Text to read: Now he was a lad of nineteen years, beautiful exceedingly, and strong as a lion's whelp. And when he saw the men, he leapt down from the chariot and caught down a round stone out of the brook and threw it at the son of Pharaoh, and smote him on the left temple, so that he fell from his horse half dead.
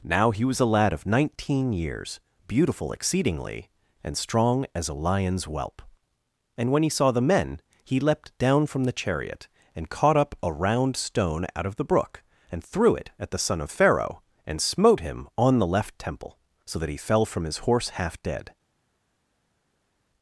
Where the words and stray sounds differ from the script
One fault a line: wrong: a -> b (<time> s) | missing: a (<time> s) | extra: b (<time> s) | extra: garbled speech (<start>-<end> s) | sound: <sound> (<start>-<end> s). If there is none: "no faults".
wrong: down -> up (10.2 s)